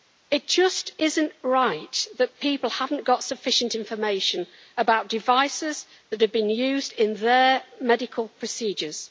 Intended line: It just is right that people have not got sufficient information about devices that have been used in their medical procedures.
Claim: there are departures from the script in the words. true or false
true